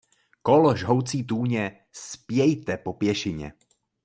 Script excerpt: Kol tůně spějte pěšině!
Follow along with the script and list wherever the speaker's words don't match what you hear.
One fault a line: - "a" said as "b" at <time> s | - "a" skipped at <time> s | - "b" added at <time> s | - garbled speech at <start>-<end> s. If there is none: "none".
- "žhoucí" added at 0.8 s
- "po" added at 2.8 s